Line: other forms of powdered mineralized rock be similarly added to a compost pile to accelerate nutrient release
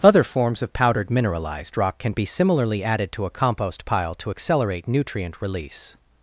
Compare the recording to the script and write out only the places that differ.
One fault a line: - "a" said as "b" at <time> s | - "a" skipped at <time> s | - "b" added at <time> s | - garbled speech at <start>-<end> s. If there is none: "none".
- "can" added at 2.0 s